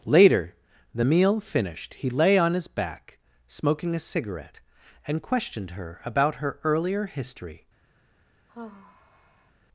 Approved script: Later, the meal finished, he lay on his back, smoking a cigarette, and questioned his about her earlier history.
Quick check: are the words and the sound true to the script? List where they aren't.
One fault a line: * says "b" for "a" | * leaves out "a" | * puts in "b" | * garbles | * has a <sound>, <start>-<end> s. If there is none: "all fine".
* says "her" for "his"
* has a sigh, 8.5-9.5 s